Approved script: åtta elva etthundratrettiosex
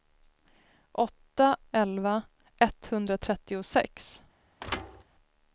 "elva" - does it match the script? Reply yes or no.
yes